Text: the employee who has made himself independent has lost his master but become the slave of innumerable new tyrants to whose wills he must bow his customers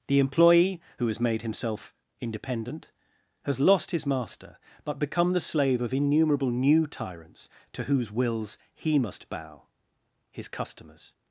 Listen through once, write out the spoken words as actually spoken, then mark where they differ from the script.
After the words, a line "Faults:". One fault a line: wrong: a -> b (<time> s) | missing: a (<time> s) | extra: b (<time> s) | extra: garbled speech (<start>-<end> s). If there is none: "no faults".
the employee who has made himself independent has lost his master but become the slave of innumerable new tyrants to whose wills he must bow his customers
Faults:
no faults